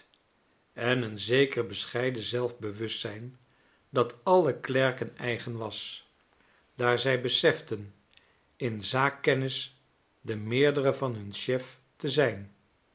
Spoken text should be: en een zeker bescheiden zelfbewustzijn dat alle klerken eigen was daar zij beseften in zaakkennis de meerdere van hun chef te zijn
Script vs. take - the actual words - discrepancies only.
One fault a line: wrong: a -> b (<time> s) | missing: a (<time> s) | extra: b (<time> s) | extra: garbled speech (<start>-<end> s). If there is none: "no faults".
no faults